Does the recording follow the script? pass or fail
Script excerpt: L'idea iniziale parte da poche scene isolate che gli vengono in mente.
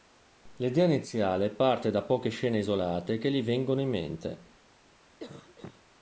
pass